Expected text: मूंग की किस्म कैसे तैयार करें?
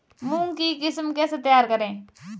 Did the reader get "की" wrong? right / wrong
right